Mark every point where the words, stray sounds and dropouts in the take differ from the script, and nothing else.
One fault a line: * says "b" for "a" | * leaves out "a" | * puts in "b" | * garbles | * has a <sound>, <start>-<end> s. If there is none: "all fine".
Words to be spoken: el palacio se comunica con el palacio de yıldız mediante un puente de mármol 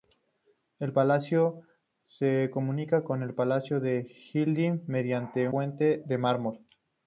* leaves out "un"